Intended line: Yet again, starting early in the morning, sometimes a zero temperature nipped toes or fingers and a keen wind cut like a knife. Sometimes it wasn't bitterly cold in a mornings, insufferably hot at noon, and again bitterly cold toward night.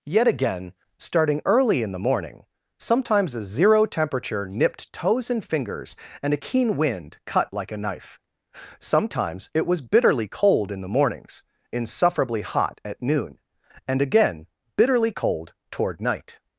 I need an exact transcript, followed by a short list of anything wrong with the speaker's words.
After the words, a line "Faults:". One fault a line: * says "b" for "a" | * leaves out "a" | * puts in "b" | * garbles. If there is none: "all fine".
Yet again, starting early in the morning, sometimes a zero temperature nipped toes and fingers and a keen wind cut like a knife. Sometimes it was bitterly cold in the mornings, insufferably hot at noon, and again bitterly cold toward night.
Faults:
* says "and" for "or"
* says "was" for "wasn't"
* says "the" for "a"